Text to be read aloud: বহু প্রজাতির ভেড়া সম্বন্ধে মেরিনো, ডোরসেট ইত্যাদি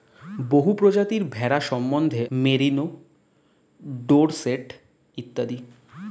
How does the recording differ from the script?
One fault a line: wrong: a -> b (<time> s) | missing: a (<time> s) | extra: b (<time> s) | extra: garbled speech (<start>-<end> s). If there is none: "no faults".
no faults